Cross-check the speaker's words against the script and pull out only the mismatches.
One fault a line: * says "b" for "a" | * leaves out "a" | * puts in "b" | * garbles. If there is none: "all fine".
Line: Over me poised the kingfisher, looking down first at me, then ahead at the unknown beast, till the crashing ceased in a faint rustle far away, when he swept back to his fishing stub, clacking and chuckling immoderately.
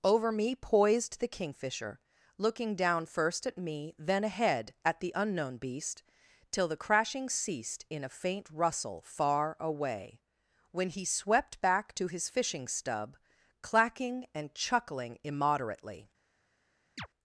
all fine